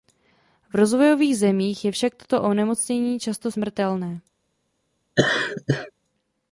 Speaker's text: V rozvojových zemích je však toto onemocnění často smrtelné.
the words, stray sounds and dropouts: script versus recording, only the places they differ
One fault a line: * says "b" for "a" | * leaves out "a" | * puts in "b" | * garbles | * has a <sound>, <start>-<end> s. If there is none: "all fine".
* has a laugh, 5.2-5.9 s